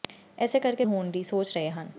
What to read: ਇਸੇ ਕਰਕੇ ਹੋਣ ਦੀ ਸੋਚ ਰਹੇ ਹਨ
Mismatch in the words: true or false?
false